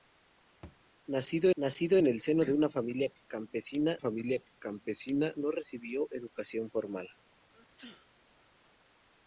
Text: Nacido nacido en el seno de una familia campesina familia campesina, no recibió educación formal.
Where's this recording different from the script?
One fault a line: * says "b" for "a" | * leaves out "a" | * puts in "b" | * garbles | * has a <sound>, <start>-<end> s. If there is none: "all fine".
* has a thud, 0.6-0.8 s
* has a sneeze, 7.5-8.3 s